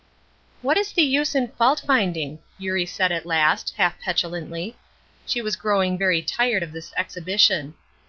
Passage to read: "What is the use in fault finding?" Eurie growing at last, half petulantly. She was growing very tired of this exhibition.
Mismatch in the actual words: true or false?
true